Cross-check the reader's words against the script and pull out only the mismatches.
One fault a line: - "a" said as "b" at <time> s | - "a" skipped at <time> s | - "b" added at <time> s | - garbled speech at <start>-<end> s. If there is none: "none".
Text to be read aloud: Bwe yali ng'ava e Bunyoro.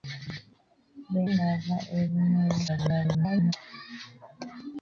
- "yali" skipped at 1.2 s
- garbled speech at 2.7-3.5 s